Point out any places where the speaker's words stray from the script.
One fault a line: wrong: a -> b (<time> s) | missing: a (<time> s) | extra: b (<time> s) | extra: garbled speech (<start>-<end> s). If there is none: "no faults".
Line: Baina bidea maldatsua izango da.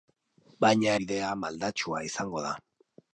no faults